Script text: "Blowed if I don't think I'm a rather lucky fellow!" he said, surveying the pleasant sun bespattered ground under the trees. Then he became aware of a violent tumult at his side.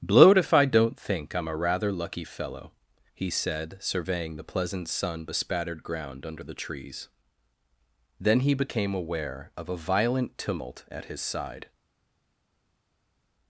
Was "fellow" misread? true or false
false